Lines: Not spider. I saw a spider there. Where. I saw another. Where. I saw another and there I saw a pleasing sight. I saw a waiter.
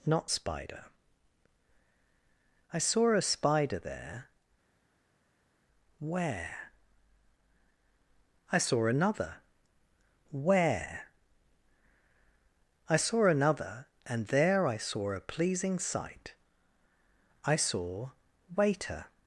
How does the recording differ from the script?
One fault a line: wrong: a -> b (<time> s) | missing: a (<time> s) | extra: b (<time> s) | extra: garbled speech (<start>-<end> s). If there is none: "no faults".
missing: a (18.1 s)